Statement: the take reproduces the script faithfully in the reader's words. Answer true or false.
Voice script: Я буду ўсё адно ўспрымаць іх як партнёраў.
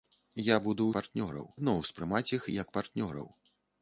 false